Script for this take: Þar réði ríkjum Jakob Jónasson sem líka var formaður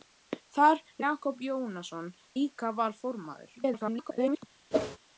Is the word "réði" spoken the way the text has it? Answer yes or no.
no